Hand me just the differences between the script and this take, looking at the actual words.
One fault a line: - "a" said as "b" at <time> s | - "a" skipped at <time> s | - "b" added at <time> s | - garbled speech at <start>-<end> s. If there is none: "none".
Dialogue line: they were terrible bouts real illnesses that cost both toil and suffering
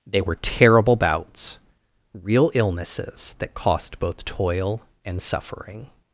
none